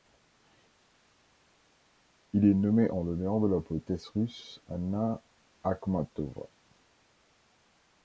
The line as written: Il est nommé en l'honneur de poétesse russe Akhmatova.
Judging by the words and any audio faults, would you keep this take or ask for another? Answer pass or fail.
fail